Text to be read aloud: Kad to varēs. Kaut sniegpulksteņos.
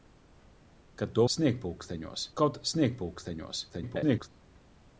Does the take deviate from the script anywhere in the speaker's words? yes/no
yes